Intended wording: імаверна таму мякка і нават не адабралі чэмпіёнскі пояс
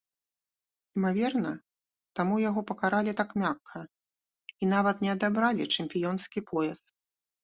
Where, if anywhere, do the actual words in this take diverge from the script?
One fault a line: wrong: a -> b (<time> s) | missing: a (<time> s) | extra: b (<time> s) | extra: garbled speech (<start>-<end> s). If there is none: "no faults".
extra: яго пакаралі так (2.5 s)